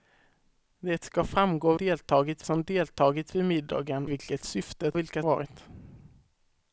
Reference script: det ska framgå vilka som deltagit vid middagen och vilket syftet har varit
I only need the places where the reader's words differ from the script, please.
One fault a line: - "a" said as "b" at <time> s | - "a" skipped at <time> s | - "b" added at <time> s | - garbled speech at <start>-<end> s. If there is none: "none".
- "vilka" said as "deltagit" at 1.8 s
- "och" skipped at 4.1 s
- "har" said as "vilka" at 4.9 s